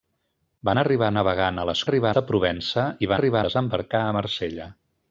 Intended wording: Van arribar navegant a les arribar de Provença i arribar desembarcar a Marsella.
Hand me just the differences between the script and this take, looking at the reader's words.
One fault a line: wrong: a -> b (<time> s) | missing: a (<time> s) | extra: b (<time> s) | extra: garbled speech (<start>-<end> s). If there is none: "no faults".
no faults